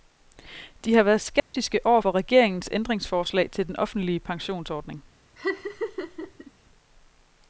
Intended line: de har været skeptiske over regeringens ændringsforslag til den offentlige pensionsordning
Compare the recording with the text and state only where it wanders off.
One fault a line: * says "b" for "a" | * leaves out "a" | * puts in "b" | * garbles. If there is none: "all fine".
* puts in "for"